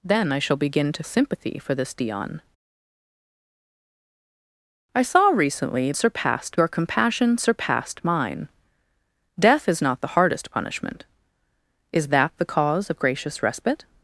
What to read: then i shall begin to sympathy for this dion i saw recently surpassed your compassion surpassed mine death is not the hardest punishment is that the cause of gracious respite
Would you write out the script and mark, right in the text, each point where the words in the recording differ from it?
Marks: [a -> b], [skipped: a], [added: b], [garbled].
then i shall begin to sympathy for this dion i saw recently surpassed your compassion surpassed mine death is not the hardest punishment is that the cause of gracious respite